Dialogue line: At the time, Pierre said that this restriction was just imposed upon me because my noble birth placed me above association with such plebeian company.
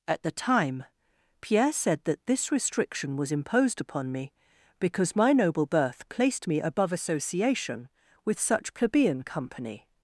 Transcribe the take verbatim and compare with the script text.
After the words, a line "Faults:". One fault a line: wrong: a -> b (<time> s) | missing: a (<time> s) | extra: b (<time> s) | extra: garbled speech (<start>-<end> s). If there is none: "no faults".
At the time, Pierre said that this restriction was imposed upon me because my noble birth placed me above association with such plebeian company.
Faults:
missing: just (3.3 s)